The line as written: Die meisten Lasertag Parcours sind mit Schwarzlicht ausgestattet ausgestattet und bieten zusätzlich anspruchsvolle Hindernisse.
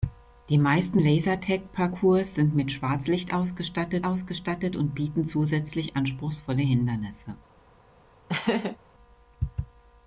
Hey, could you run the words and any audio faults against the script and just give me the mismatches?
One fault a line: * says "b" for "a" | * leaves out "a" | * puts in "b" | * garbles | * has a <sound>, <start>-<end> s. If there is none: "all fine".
* has a laugh, 8.3-8.8 s